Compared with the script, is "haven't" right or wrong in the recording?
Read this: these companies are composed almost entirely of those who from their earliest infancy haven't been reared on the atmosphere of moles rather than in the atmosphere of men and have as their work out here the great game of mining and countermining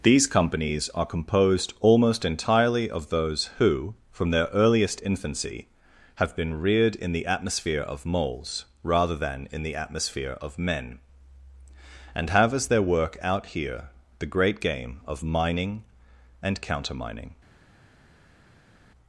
wrong